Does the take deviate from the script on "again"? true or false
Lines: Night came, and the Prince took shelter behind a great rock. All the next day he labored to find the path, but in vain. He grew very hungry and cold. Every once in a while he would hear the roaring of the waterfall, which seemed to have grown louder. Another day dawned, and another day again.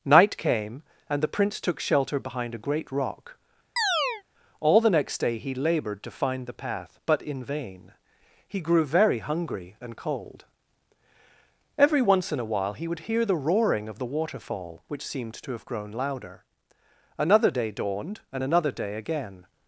false